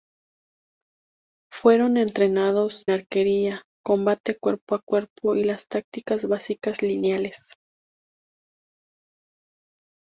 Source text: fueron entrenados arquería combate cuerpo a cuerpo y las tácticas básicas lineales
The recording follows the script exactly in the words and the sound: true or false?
true